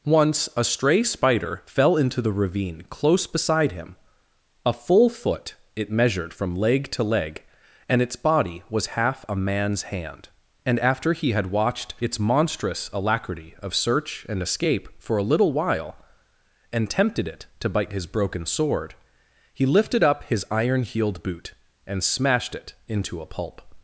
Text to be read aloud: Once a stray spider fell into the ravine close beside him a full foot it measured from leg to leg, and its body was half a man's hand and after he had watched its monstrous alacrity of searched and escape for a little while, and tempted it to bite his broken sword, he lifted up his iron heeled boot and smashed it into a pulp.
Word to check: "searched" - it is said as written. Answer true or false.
false